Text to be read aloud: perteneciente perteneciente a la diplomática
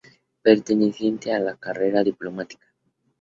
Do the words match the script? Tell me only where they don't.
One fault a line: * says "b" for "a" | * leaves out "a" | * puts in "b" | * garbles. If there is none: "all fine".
* leaves out "perteneciente"
* puts in "carrera"